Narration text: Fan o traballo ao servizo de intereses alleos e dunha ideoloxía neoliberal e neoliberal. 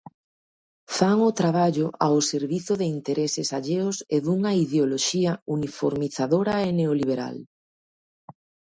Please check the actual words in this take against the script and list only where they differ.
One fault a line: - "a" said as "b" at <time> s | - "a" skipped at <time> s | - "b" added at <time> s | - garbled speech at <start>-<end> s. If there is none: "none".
- "neoliberal" said as "uniformizadora" at 5.6 s